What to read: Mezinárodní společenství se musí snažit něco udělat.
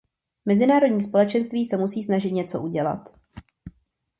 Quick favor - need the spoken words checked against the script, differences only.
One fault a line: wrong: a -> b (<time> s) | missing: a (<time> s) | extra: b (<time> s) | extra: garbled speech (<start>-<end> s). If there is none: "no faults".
no faults